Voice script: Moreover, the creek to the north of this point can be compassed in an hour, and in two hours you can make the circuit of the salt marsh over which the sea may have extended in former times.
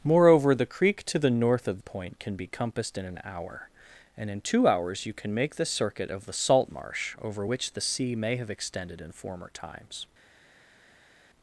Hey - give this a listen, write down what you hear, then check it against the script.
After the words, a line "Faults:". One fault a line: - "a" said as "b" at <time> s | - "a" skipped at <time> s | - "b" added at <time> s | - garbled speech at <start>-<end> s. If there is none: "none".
Moreover, the creek to the north of point can be compassed in an hour, and in two hours you can make the circuit of the salt marsh over which the sea may have extended in former times.
Faults:
- "this" skipped at 1.8 s